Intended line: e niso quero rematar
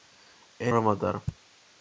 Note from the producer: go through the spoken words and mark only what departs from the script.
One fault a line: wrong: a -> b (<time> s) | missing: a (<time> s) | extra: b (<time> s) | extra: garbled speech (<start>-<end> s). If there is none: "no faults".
missing: niso quero (0.7 s)